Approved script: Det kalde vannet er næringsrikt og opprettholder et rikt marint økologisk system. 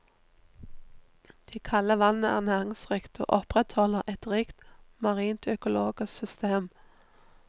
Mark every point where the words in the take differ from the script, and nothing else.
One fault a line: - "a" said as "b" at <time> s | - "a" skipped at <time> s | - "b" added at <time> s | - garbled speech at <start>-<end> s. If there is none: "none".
none